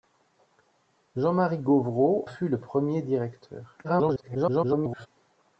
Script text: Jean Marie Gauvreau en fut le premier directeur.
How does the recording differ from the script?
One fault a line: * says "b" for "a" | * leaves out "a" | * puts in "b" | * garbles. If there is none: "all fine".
* leaves out "en"
* garbles